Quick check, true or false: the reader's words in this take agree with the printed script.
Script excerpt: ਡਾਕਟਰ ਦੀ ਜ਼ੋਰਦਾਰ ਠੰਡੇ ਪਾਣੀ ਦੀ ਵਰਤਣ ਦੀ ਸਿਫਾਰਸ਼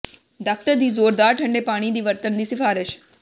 true